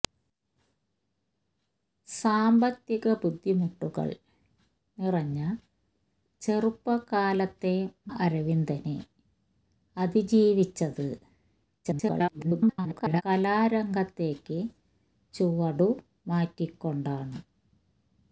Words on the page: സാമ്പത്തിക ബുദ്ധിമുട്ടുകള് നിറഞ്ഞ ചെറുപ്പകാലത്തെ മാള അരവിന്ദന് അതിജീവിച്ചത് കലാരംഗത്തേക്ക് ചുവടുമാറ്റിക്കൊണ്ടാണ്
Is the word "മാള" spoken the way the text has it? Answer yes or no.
no